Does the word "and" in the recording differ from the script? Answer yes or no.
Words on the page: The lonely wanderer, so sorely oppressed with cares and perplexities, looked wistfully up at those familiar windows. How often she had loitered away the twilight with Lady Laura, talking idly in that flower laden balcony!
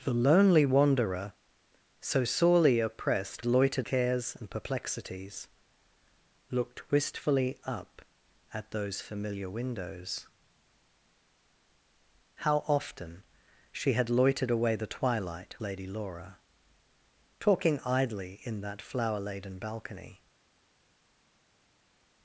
no